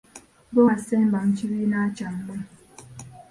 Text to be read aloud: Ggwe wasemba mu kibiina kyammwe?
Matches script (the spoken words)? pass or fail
pass